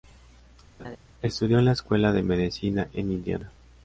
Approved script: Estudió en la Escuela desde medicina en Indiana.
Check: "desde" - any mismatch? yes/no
yes